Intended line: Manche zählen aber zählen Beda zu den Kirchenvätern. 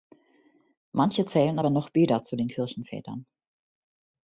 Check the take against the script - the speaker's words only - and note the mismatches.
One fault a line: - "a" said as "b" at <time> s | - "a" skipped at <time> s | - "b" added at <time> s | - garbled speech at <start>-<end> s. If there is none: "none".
- "zählen" said as "noch" at 1.7 s